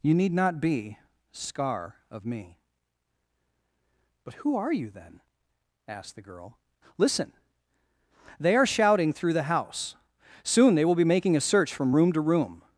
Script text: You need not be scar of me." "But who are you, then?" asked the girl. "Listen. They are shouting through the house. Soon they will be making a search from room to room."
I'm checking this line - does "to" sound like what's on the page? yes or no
yes